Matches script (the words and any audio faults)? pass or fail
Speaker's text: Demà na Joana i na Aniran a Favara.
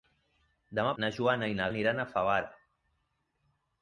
pass